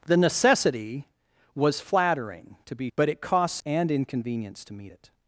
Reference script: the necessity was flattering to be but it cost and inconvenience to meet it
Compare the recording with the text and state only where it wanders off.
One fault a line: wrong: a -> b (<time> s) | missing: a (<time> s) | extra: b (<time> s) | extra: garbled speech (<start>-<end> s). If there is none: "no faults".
no faults